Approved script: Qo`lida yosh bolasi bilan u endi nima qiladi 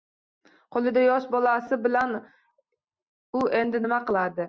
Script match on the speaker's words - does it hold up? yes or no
yes